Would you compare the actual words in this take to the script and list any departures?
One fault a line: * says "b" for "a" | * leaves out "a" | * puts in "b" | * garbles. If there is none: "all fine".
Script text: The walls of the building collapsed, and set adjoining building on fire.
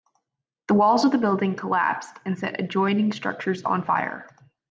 * says "structures" for "building"